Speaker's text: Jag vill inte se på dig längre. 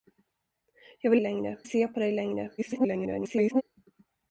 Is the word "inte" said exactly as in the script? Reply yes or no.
no